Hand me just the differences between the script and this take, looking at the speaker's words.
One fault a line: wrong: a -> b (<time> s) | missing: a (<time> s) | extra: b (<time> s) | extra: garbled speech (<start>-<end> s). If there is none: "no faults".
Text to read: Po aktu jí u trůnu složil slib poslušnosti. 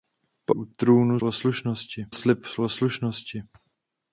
missing: aktu jí (0.6 s)
wrong: složil -> poslušnosti (1.2 s)